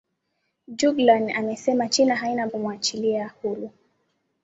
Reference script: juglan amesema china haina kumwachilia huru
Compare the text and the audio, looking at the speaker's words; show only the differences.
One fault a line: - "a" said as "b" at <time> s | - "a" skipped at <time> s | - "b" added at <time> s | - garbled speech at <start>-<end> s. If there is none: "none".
none